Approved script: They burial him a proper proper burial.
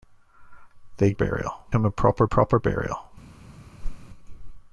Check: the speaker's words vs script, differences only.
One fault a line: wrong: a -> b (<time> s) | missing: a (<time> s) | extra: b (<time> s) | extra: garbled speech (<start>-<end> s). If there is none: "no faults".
no faults